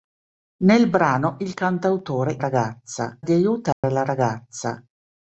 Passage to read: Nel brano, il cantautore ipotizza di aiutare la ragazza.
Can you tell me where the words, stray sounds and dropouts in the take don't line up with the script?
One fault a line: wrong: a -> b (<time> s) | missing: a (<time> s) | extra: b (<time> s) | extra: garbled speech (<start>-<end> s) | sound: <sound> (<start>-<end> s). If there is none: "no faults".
wrong: ipotizza -> ragazza (2.4 s)
sound: dropout (3.7-3.8 s)